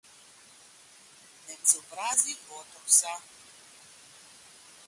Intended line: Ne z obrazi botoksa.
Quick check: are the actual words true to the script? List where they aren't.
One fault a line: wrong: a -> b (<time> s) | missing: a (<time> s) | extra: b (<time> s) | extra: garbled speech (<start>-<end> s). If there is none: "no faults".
no faults